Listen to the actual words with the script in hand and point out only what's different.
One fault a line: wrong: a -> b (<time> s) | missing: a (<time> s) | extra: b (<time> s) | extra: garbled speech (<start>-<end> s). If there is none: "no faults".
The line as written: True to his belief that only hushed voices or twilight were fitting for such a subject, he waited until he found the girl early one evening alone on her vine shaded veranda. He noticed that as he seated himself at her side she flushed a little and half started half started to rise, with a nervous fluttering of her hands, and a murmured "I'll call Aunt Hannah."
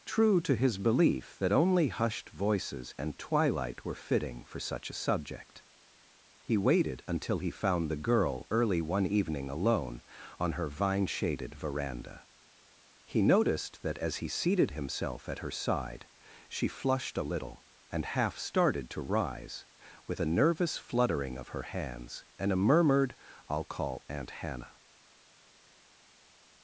wrong: or -> and (3.0 s)
missing: half started (18.9 s)